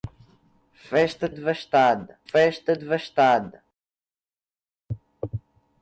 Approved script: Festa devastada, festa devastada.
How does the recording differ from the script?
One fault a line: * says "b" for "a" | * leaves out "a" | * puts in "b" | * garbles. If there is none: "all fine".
all fine